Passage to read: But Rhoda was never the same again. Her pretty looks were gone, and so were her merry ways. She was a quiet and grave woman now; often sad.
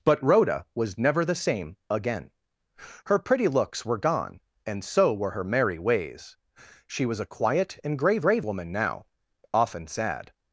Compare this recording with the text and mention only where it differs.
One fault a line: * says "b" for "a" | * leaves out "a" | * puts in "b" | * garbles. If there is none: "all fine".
* puts in "grave"